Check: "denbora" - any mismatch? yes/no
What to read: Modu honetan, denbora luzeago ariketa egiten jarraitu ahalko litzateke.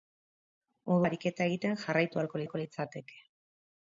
yes